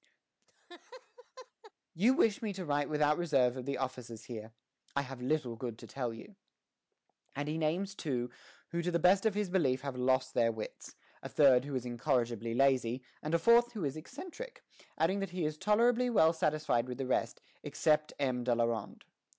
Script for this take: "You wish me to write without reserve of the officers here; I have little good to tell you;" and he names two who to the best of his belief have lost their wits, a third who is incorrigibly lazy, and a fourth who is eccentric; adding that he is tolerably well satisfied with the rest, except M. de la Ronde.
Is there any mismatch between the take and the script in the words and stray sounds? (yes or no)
yes